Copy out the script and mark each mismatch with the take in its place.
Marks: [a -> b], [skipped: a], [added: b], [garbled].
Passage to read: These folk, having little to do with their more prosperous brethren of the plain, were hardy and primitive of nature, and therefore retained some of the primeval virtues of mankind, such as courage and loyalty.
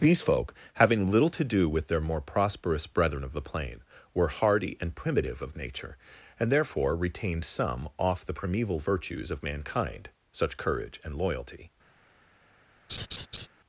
These folk, having little to do with their more prosperous brethren of the plain, were hardy and primitive of nature, and therefore retained some [of -> off] the primeval virtues of mankind, such [skipped: as] courage and loyalty.